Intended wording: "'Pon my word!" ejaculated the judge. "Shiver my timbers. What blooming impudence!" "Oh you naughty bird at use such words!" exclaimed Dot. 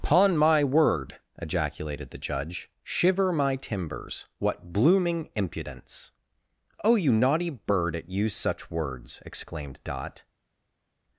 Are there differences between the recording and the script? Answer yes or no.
no